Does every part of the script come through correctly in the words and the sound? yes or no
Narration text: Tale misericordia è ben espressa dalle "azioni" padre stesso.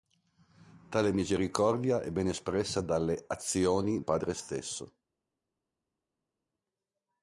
yes